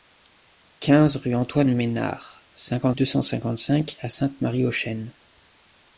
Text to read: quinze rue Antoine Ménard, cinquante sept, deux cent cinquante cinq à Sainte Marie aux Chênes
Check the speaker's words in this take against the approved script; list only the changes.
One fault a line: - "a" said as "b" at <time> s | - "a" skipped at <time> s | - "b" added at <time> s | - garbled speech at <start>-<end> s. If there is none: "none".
- "sept" skipped at 3.0 s